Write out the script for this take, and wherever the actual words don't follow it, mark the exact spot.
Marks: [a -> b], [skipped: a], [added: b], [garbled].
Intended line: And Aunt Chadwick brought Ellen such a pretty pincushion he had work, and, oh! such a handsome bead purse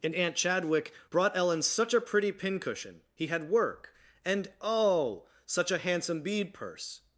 And Aunt Chadwick brought Ellen such a pretty pincushion he had work, and, oh! such a handsome bead purse